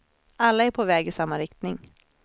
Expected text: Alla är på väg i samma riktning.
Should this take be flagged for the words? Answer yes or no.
no